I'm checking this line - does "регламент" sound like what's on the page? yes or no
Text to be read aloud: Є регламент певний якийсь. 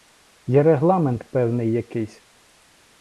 yes